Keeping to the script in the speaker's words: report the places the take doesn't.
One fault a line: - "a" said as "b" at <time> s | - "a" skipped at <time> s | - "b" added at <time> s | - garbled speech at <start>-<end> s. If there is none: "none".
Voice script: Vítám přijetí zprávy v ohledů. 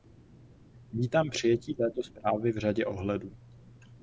- "této" added at 1.7 s
- "řadě" added at 2.6 s